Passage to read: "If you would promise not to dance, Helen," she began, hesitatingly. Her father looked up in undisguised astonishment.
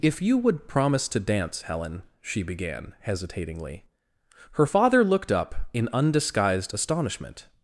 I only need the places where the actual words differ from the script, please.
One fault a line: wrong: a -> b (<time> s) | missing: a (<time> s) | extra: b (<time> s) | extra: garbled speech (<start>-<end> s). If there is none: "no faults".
missing: not (1.1 s)